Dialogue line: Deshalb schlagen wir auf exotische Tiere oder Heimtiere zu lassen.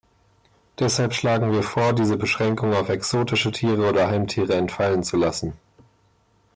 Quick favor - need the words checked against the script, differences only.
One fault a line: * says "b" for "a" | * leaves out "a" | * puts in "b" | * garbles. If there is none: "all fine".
* puts in "vor diese Beschränkung"
* puts in "entfallen"